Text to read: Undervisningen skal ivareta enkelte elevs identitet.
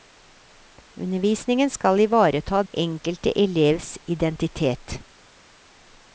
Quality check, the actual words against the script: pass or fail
pass